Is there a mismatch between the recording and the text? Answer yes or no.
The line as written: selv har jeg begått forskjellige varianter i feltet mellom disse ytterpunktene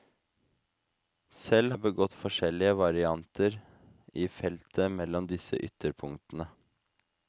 yes